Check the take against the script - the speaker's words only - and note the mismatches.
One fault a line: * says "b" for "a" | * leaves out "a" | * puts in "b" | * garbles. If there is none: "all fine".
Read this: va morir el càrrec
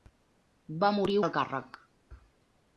all fine